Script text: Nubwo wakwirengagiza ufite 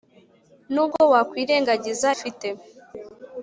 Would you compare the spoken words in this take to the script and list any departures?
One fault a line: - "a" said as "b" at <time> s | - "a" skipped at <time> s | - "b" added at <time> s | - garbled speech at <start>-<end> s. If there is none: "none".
none